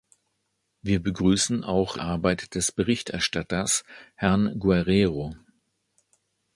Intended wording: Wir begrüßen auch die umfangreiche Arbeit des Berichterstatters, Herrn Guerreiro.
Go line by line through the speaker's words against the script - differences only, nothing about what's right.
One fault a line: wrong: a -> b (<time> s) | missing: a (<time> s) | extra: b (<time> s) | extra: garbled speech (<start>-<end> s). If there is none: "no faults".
missing: die umfangreiche (2.0 s)